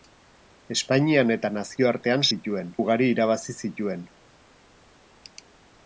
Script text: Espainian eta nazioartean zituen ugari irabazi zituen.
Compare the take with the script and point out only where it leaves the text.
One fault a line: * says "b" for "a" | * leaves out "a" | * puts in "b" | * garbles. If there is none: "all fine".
all fine